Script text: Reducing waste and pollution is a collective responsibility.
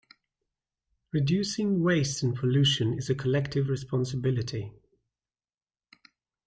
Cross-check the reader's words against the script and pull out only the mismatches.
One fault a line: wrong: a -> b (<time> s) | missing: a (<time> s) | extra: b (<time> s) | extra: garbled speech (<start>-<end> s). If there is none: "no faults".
no faults